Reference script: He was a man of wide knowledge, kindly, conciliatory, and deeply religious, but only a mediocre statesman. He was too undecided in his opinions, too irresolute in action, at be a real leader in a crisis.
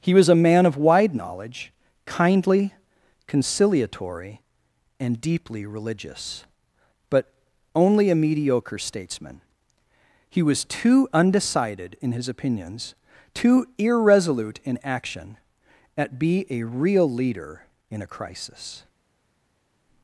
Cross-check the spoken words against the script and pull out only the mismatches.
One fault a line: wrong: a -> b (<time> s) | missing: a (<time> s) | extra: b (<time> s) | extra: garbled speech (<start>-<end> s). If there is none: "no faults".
no faults